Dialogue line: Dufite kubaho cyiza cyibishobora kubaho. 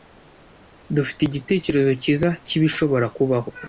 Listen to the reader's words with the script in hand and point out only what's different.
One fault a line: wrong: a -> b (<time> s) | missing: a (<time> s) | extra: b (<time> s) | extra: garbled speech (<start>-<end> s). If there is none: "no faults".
wrong: kubaho -> igitekerezo (1.2 s)